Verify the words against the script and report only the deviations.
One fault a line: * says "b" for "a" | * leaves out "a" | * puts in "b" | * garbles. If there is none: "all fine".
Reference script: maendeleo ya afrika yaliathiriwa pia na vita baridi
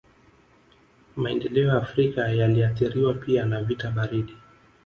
all fine